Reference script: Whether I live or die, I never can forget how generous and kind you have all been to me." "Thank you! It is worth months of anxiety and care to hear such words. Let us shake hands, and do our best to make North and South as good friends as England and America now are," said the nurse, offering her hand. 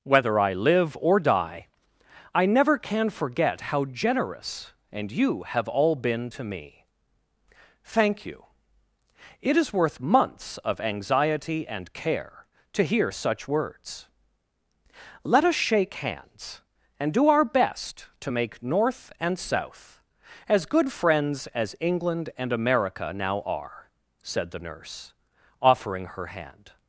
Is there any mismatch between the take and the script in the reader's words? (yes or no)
yes